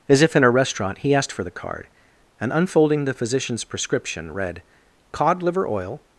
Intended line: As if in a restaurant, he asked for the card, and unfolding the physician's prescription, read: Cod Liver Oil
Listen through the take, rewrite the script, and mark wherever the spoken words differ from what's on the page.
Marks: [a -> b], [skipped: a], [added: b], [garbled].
As if in a restaurant, he asked for the card, and unfolding the physician's prescription, read: Cod Liver Oil